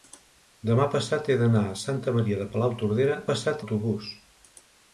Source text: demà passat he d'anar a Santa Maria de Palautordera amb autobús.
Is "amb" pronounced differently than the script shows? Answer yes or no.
yes